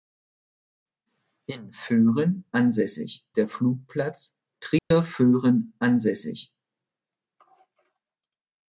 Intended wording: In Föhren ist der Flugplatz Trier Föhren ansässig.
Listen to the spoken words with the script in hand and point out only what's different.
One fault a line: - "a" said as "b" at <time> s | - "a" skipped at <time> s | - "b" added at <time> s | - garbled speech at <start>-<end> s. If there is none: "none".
- "ist" said as "ansässig" at 2.5 s